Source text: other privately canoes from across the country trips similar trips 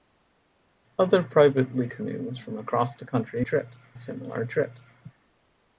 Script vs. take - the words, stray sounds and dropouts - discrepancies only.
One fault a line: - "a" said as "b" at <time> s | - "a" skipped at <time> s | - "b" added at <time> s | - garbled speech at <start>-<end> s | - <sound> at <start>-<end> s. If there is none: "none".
none